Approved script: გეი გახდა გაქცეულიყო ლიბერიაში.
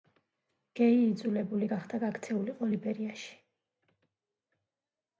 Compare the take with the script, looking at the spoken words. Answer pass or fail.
fail